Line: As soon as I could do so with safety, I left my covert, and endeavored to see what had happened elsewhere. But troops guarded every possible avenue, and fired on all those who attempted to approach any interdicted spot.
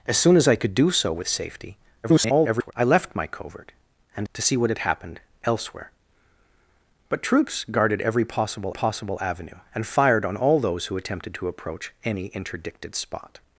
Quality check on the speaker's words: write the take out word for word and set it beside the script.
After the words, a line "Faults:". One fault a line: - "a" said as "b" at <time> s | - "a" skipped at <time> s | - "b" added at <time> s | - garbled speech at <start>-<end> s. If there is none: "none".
As soon as I could do so with safety, [garbled] I left my covert, and to see what had happened elsewhere. But troops guarded every possible possible avenue, and fired on all those who attempted to approach any interdicted spot.
Faults:
- garbled speech at 2.0-2.7 s
- "endeavored" skipped at 4.3 s
- "possible" added at 8.7 s